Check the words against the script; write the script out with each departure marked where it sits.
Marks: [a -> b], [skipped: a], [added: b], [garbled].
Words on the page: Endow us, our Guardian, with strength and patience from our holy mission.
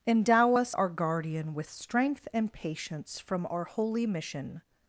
Endow us, our Guardian, with strength and patience from our holy mission.